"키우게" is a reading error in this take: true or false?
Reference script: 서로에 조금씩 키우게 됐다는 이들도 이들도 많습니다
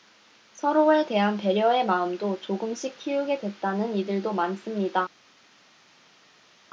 false